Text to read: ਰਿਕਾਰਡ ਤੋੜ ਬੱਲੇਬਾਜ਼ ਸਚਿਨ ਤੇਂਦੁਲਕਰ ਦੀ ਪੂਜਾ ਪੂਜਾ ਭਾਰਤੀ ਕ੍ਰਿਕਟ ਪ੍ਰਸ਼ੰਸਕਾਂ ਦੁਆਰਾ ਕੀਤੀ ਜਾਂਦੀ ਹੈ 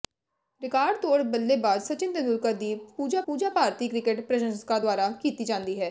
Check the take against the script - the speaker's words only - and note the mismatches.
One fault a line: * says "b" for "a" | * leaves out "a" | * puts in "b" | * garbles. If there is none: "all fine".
all fine